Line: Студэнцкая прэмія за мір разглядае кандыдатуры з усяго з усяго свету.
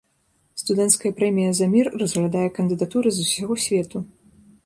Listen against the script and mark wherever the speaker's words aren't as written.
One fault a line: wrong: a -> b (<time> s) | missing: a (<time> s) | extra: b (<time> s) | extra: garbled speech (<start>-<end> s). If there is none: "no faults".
missing: з усяго (3.5 s)